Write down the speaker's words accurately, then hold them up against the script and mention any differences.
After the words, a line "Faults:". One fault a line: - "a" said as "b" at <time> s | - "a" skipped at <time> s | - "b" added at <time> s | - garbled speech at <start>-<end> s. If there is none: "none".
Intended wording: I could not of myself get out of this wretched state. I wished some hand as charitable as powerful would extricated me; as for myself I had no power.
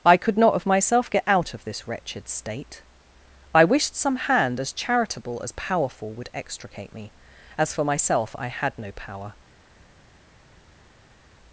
I could not of myself get out of this wretched state. I wished some hand as charitable as powerful would extricate me; as for myself I had no power.
Faults:
- "extricated" said as "extricate" at 6.3 s